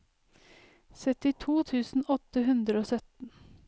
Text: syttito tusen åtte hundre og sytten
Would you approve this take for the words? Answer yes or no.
yes